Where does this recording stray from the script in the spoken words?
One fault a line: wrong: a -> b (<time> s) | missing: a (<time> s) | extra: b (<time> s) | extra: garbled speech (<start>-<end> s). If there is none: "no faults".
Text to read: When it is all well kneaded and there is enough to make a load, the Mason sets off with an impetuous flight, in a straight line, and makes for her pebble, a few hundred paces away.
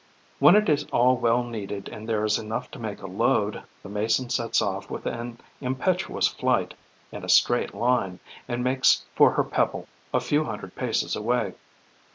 no faults